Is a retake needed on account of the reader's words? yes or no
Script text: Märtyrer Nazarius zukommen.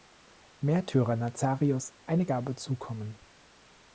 yes